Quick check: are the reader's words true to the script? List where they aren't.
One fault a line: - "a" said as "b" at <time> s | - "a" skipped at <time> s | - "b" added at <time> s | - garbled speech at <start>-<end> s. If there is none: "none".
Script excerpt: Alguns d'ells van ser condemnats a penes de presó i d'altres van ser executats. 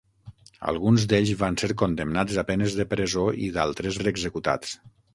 - "van" skipped at 4.0 s